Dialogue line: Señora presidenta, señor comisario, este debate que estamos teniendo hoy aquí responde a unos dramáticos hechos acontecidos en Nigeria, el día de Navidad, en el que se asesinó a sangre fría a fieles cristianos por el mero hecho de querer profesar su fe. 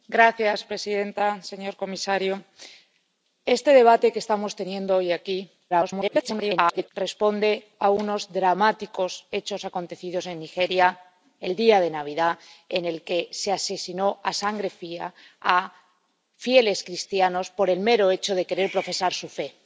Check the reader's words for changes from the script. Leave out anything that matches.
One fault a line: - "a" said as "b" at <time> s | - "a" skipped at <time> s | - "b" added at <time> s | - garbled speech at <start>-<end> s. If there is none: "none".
- garbled speech at 5.7-6.9 s